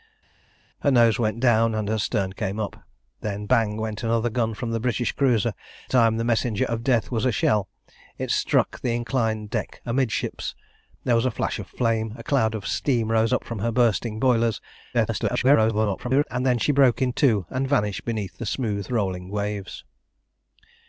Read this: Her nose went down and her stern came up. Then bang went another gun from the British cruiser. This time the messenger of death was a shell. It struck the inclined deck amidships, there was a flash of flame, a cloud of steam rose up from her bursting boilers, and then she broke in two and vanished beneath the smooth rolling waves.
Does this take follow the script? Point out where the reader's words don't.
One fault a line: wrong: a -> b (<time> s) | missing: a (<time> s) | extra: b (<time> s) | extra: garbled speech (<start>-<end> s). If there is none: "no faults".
missing: This (5.5 s)
extra: garbled speech (14.9-16.2 s)